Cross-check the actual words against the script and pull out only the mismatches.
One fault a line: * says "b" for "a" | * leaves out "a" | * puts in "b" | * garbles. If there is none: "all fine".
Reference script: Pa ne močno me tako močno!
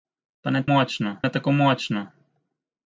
all fine